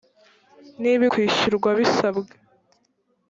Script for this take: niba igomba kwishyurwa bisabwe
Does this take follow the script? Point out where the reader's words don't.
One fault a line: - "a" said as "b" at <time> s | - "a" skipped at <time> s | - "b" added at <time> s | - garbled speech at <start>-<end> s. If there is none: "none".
- "igomba" skipped at 1.0 s